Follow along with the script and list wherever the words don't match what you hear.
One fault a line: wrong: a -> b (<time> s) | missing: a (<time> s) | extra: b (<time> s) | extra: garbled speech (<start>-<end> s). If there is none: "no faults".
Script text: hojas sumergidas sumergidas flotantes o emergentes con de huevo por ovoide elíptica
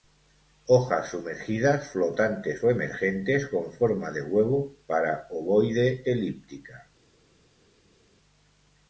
missing: sumergidas (1.9 s)
extra: forma (3.7 s)
wrong: por -> para (4.9 s)